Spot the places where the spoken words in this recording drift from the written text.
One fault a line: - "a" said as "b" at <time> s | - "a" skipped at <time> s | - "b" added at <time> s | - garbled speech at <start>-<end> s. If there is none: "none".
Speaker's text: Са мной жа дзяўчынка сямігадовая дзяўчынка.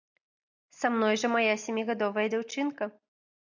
- "дзяўчынка" said as "мая" at 1.4 s